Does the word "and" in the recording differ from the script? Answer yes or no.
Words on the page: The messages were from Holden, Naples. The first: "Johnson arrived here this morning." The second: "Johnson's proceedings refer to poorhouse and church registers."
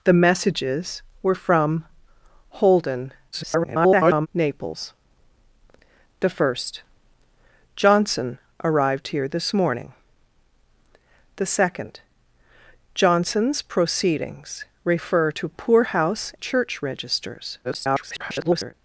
yes